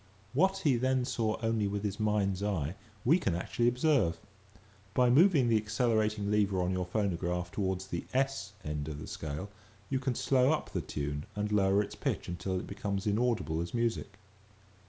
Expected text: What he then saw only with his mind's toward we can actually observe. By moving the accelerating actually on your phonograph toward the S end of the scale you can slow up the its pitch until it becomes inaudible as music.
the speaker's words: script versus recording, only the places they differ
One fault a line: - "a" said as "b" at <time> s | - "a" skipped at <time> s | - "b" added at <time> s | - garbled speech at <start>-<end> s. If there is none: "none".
- "toward" said as "eye" at 2.4 s
- "actually" said as "lever" at 6.3 s
- "tune and lower" added at 10.8 s